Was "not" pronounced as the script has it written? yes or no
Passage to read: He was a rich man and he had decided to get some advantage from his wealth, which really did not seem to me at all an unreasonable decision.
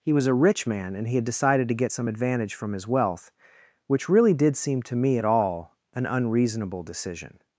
no